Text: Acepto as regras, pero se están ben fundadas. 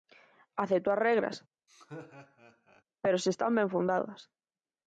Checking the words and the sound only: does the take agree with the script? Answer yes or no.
no